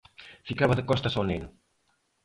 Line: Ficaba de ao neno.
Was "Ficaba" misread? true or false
false